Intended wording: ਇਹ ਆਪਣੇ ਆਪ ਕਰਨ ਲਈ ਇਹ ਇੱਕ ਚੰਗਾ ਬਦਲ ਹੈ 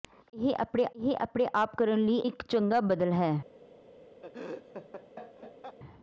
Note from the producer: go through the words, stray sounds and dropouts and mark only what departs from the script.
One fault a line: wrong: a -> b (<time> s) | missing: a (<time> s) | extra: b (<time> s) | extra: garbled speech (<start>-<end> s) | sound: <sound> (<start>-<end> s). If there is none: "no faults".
extra: ਇਹ ਆਪਣੇ (1.0 s)
missing: ਇਹ (2.2 s)
sound: laugh (4.2-5.8 s)